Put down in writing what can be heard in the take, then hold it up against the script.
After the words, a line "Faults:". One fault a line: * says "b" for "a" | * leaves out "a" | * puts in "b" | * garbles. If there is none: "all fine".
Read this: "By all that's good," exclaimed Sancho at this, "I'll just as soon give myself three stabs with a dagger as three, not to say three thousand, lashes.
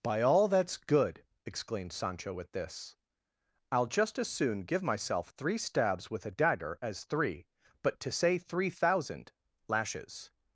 "By all that's good," exclaimed Sancho at this, "I'll just as soon give myself three stabs with a dagger as three, but to say three thousand, lashes.
Faults:
* says "but" for "not"